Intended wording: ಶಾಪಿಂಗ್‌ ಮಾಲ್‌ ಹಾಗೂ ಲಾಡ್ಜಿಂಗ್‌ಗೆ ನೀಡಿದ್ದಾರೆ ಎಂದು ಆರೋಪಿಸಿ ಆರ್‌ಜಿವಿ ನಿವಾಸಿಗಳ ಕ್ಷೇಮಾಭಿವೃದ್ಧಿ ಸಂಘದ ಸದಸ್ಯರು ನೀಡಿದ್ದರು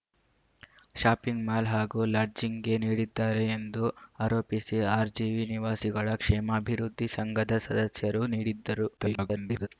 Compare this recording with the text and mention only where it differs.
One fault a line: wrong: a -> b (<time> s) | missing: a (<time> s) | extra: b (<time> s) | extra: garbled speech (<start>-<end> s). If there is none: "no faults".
extra: garbled speech (9.0-9.7 s)